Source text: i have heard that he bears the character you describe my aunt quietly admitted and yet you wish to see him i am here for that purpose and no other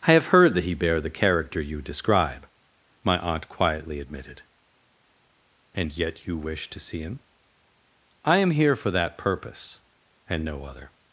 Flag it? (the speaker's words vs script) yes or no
yes